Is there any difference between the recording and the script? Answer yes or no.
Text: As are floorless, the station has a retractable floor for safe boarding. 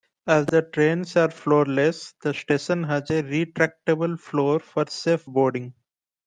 yes